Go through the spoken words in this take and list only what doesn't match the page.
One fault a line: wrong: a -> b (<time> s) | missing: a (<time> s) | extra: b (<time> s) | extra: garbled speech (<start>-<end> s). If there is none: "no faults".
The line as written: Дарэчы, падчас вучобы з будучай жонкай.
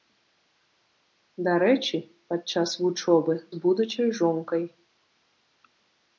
no faults